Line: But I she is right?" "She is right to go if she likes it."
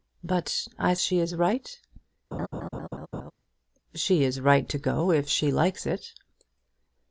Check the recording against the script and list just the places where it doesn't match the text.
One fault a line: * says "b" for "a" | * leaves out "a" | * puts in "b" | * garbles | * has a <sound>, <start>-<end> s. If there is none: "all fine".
* has a laugh, 2.3-3.3 s